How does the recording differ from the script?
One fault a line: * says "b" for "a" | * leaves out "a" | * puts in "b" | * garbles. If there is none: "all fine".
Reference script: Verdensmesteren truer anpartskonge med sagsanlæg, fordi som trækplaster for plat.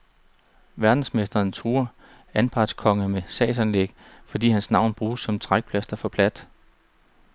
* puts in "hans navn bruges"